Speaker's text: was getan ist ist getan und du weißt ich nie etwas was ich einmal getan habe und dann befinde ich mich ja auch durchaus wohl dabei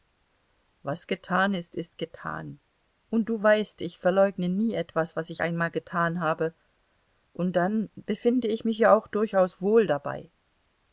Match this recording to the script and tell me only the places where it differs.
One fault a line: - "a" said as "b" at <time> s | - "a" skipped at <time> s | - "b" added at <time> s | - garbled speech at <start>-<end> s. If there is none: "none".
- "verleugne" added at 4.0 s